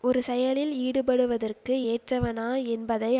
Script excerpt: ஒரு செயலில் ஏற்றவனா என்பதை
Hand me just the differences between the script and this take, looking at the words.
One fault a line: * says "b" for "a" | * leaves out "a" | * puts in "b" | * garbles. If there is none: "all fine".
* puts in "ஈடுபடுவதற்கு"